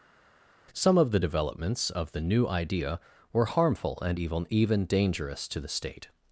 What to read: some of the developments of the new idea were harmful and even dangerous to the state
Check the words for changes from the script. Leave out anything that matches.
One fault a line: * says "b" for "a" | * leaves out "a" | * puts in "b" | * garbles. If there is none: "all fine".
* puts in "even"